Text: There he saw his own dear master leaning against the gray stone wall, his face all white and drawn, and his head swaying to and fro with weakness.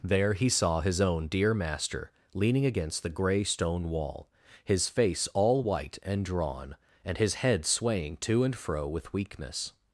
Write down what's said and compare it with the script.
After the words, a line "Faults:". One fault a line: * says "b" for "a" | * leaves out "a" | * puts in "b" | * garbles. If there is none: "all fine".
There he saw his own dear master leaning against the gray stone wall, his face all white and drawn, and his head swaying to and fro with weakness.
Faults:
all fine